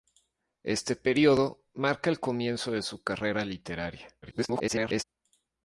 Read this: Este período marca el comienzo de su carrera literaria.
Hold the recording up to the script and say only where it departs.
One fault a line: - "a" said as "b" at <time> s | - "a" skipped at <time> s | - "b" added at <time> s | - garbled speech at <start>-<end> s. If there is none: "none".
- garbled speech at 4.2-5.0 s